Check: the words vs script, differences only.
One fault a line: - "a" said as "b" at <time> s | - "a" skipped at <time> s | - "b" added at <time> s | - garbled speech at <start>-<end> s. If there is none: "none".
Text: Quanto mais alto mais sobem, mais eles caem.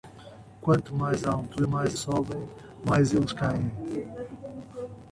none